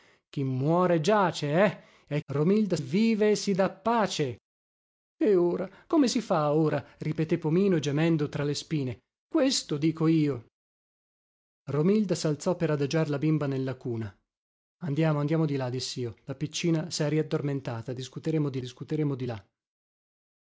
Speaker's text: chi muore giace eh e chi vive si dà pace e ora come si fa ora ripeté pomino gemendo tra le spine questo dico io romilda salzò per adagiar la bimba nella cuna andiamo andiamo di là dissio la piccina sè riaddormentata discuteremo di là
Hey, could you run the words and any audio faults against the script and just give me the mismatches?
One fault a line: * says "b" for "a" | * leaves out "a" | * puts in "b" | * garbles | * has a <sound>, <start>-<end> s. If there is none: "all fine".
* says "romilda" for "chi"
* puts in "discuteremo di"